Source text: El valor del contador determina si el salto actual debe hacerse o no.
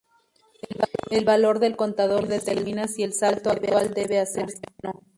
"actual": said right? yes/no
yes